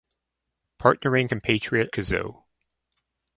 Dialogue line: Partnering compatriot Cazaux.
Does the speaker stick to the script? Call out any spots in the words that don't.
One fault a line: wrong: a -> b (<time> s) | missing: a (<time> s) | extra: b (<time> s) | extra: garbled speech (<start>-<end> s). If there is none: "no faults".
no faults